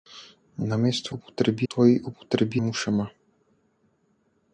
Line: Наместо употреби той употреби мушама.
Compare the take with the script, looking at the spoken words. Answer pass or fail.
pass